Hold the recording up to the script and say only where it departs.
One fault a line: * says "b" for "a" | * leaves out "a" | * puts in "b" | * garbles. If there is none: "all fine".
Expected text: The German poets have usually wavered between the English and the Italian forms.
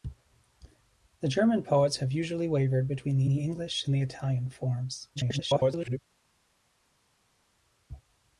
* puts in "the"
* garbles